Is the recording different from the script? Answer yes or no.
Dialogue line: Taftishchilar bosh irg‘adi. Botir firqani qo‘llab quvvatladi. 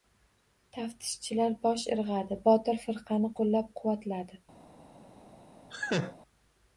no